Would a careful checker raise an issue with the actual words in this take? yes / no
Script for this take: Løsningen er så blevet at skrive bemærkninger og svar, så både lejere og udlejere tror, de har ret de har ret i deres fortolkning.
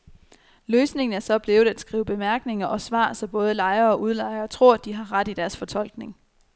yes